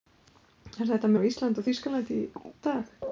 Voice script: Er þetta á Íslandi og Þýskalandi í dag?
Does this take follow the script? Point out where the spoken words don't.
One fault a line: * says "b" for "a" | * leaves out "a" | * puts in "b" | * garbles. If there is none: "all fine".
all fine